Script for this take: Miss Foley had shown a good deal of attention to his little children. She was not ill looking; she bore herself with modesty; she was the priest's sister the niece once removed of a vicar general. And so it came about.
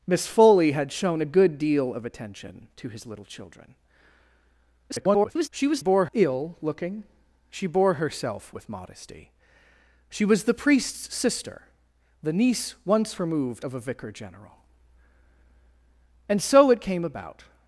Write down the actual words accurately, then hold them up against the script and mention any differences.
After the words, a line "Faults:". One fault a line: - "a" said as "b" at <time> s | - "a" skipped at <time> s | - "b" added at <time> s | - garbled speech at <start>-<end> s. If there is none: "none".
Miss Foley had shown a good deal of attention to his little children. [garbled] She was bore ill looking; she bore herself with modesty; she was the priest's sister the niece once removed of a vicar general. And so it came about.
Faults:
- garbled speech at 4.9-5.5 s
- "not" said as "bore" at 5.8 s